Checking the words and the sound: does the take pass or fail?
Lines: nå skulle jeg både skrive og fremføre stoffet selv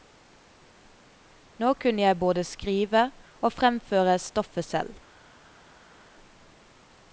fail